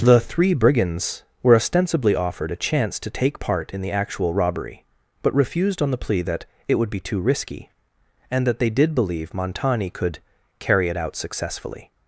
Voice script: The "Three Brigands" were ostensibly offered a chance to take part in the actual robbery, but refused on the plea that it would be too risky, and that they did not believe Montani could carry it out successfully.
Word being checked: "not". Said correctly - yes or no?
no